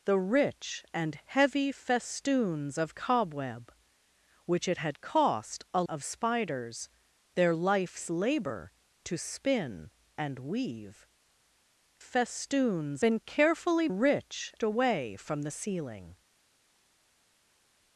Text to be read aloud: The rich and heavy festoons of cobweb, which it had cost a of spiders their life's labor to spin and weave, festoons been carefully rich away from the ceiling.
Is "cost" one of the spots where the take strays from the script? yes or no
no